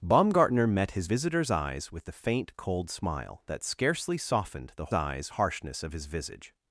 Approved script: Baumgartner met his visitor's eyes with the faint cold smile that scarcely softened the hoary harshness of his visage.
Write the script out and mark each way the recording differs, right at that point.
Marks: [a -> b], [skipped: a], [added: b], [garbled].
Baumgartner met his visitor's eyes with the faint cold smile that scarcely softened the [hoary -> eyes] harshness of his visage.